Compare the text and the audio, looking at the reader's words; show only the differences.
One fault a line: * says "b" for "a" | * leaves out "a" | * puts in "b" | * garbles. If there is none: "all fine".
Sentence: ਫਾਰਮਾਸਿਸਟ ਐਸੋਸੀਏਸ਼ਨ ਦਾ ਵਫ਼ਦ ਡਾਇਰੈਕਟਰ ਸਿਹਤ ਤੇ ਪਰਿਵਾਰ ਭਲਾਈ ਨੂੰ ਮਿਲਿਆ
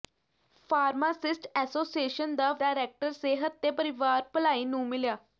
* leaves out "ਵਫ਼ਦ"